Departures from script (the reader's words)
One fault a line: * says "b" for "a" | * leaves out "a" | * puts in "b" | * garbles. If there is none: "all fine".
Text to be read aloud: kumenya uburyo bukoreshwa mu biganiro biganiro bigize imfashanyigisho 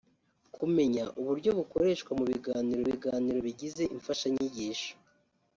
all fine